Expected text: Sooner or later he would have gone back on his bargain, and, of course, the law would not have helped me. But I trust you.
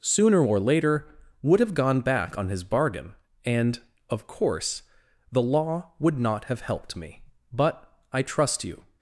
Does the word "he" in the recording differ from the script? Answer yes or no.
yes